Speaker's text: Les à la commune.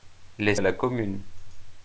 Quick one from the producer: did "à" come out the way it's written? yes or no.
yes